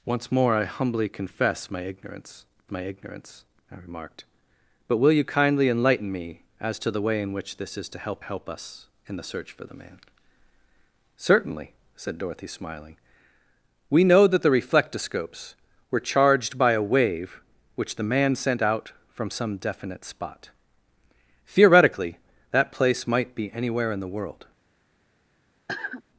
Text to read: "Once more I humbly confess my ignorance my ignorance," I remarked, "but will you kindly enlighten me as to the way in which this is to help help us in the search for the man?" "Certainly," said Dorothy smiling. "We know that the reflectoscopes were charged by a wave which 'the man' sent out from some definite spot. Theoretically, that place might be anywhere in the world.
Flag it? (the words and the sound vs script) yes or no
yes